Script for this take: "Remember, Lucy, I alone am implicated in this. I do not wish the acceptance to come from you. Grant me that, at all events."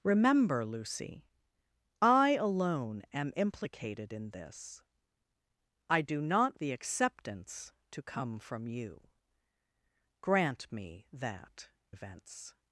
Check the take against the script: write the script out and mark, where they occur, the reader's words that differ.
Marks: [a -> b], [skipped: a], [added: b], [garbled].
"Remember, Lucy, I alone am implicated in this. I do not [skipped: wish] the acceptance to come from you. Grant me that, [skipped: at all] events."